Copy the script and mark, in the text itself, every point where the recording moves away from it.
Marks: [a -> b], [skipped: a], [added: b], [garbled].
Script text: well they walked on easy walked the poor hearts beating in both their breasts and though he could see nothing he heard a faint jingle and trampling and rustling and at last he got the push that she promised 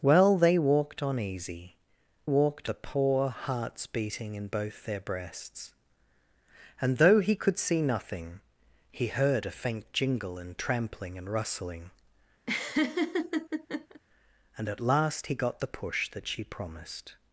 well they walked on easy walked the poor hearts beating in both their breasts and though he could see nothing he heard a faint jingle and trampling and rustling and at last he got the push that she promised